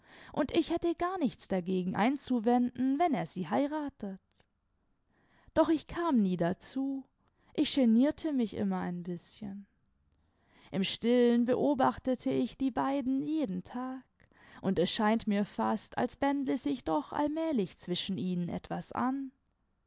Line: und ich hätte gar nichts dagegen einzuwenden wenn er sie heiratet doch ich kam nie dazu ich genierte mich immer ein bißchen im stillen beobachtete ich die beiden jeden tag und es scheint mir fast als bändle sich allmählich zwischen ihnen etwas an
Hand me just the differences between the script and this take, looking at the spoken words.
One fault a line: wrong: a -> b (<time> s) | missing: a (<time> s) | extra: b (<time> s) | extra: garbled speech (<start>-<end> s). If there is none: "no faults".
extra: doch (16.8 s)